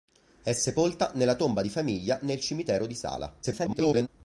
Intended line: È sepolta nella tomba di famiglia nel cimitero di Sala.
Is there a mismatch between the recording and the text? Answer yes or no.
yes